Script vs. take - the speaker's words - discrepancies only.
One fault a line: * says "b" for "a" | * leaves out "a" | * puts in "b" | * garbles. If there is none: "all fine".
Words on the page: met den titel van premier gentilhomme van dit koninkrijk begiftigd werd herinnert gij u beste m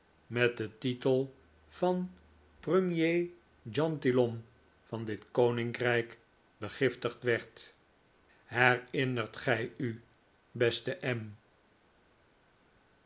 all fine